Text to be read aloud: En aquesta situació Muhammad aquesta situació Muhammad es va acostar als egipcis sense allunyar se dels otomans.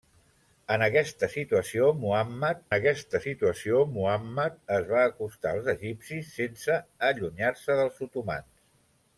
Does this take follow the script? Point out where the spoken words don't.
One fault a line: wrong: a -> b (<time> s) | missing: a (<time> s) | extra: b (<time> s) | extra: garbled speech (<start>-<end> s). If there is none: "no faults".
no faults